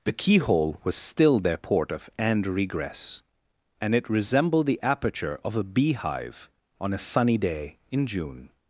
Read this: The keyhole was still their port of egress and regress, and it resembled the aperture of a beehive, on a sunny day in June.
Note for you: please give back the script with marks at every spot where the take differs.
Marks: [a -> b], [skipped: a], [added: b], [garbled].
The keyhole was still their port of [skipped: egress] and regress, and it resembled the aperture of a beehive, on a sunny day in June.